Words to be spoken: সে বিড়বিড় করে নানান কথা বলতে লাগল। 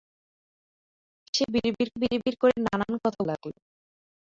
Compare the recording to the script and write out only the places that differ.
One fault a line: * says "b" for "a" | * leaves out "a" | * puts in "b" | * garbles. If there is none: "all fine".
* puts in "বিড়বিড়"
* leaves out "বলতে"